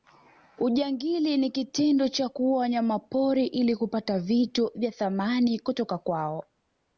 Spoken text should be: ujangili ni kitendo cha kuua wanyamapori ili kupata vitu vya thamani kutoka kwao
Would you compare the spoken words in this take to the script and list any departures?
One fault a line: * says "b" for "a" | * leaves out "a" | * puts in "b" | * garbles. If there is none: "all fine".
all fine